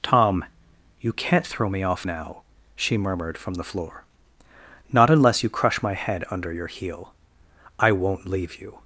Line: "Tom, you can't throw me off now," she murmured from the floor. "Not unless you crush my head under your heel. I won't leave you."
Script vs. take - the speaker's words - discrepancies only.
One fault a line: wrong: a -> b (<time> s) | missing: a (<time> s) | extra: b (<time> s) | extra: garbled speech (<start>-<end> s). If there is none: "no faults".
no faults